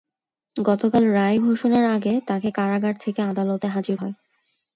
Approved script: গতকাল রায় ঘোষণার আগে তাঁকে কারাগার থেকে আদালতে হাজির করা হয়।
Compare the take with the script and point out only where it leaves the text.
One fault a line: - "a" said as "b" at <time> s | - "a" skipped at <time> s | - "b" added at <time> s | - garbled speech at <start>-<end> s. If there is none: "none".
- "করা" skipped at 4.0 s